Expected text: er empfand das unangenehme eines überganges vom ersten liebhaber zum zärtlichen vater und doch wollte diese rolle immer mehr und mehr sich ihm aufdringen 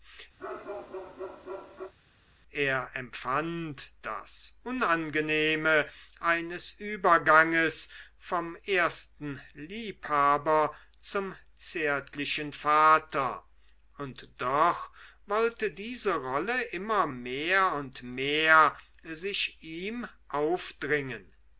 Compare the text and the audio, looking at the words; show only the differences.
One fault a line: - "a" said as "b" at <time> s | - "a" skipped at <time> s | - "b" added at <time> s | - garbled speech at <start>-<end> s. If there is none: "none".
none